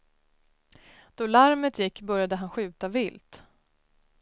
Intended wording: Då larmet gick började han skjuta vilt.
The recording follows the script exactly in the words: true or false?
true